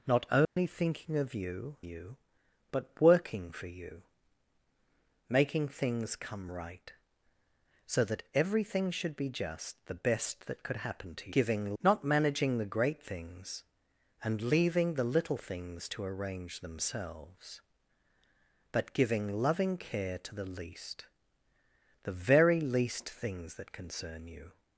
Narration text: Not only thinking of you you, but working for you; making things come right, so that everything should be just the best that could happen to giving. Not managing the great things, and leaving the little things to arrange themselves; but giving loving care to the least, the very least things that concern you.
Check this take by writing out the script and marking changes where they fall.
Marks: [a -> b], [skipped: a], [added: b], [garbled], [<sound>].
Not only [dropout] thinking of you you, but working for you; making things come right, so that everything should be just the best that could happen to giving. Not managing the great things, and leaving the little things to arrange themselves; but giving loving care to the least, the very least things that concern you.